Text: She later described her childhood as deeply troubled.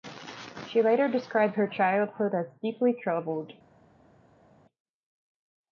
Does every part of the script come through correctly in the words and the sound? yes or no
yes